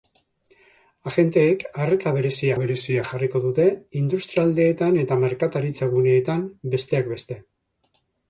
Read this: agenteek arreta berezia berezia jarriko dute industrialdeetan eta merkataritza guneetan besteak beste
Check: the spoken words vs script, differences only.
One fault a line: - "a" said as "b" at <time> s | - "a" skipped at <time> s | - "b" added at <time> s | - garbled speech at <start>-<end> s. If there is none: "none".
none